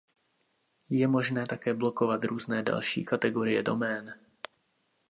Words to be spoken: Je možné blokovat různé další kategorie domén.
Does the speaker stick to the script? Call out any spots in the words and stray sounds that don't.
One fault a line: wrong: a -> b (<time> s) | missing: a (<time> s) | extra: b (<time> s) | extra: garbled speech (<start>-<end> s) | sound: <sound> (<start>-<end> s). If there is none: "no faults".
extra: také (1.4 s)